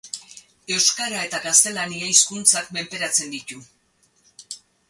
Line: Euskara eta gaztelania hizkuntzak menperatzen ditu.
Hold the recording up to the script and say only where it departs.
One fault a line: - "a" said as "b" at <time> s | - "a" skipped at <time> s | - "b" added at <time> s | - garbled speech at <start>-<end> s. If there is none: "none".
none